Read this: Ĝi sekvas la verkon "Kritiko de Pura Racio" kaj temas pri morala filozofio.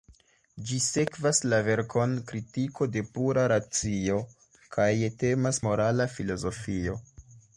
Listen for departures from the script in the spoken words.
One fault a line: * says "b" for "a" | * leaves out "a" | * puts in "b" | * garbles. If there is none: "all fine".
* leaves out "pri"